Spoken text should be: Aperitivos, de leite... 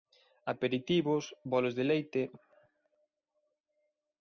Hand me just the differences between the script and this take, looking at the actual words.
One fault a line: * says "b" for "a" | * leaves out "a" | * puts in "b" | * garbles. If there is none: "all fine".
* puts in "bolos"